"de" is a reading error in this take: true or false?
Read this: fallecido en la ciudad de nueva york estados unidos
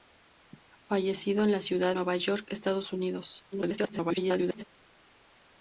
true